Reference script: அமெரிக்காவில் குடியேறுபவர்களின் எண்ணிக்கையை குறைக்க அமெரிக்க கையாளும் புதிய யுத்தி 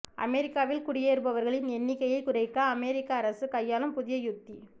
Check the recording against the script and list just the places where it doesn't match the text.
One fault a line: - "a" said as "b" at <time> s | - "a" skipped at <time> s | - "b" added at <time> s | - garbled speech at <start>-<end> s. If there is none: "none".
- "அரசு" added at 3.2 s